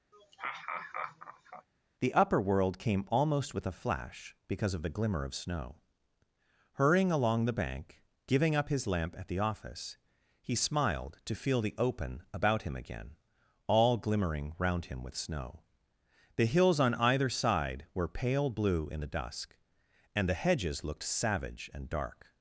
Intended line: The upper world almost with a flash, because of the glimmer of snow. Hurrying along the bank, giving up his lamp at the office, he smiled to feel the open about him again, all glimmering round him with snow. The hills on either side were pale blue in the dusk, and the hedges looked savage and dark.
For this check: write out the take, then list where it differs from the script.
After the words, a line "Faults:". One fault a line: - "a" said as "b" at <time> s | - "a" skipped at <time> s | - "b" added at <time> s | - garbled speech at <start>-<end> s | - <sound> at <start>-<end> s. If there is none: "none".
The upper world came almost with a flash, because of the glimmer of snow. Hurrying along the bank, giving up his lamp at the office, he smiled to feel the open about him again, all glimmering round him with snow. The hills on either side were pale blue in the dusk, and the hedges looked savage and dark.
Faults:
- laugh at 0.1-1.7 s
- "came" added at 2.8 s